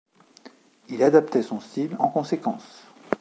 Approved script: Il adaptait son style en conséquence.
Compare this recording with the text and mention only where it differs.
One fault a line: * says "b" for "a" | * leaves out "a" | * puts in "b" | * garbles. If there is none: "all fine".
all fine